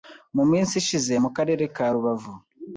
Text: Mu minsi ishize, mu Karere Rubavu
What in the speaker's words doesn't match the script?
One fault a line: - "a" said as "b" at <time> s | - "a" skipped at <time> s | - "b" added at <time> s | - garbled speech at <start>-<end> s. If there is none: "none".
- "ka" added at 1.7 s